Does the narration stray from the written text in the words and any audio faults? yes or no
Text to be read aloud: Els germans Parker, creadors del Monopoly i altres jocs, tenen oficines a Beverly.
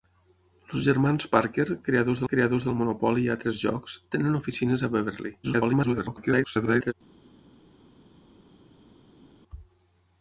yes